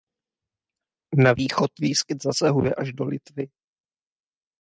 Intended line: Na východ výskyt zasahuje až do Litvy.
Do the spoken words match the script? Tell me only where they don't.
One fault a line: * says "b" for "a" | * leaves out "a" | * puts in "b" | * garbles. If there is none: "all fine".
all fine